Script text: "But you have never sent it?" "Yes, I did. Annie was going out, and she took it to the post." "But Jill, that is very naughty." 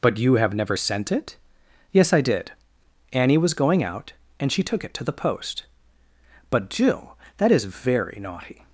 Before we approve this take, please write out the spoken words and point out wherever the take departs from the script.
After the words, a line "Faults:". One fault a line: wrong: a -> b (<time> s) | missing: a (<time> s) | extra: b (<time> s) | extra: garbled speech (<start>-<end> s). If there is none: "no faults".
"But you have never sent it?" "Yes, I did. Annie was going out, and she took it to the post." "But Jill, that is very naughty."
Faults:
no faults